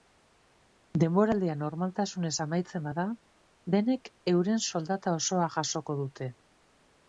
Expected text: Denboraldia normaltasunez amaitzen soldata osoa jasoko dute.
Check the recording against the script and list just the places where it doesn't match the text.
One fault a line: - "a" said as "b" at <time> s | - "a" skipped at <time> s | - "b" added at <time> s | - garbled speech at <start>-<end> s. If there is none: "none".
- "bada denek euren" added at 2.9 s